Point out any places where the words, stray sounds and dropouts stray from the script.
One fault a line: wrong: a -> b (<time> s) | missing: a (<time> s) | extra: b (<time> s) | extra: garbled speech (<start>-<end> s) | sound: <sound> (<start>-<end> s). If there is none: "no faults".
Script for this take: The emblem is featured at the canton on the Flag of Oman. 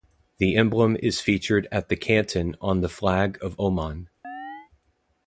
sound: chirp (4.2-4.7 s)